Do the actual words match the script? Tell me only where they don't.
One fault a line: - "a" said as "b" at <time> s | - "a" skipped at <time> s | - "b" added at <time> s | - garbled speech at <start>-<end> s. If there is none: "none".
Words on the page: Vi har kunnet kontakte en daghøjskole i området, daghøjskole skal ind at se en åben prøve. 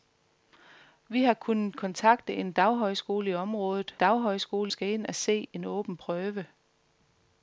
none